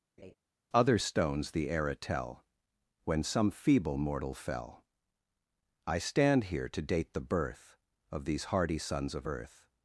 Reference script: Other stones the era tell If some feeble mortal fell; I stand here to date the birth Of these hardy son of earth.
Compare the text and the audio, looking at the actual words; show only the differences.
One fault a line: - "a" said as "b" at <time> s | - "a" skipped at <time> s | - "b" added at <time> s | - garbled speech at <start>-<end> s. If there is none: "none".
- "If" said as "When" at 3.0 s
- "son" said as "sons" at 8.8 s